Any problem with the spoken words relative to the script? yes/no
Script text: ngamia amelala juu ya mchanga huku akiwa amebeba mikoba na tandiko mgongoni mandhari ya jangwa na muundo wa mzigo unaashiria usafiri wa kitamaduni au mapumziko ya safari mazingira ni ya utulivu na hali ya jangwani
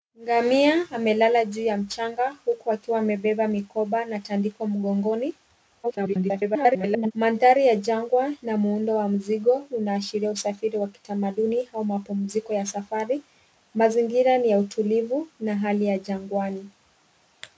yes